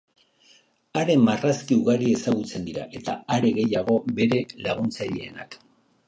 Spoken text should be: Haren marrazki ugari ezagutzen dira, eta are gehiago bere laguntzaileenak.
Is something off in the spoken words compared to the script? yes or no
no